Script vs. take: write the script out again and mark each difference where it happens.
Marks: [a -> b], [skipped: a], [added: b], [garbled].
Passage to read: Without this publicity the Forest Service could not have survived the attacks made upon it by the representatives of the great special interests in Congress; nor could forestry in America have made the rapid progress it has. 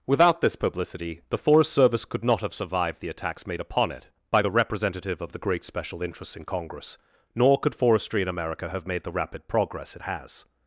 Without this publicity the Forest Service could not have survived the attacks made upon it by the [representatives -> representative] of the great special interests in Congress; nor could forestry in America have made the rapid progress it has.